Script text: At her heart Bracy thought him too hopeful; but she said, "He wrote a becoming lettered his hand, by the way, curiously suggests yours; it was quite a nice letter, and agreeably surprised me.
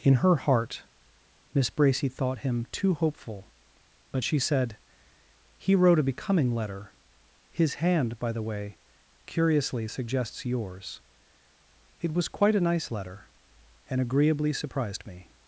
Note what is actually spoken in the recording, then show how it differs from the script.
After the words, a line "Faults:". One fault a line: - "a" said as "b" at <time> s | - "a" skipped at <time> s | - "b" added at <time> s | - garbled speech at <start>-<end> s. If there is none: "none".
In her heart Miss Bracy thought him too hopeful; but she said, "He wrote a becoming letter his hand, by the way, curiously suggests yours; it was quite a nice letter, and agreeably surprised me.
Faults:
- "At" said as "In" at 0.0 s
- "Miss" added at 1.5 s
- "lettered" said as "letter" at 6.5 s